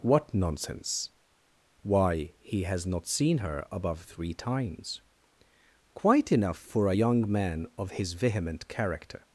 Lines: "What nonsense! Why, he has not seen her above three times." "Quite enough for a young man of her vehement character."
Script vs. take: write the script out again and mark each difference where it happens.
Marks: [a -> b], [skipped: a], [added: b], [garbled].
"What nonsense! Why, he has not seen her above three times." "Quite enough for a young man of [her -> his] vehement character."